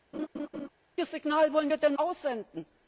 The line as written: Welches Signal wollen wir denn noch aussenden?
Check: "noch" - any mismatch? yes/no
yes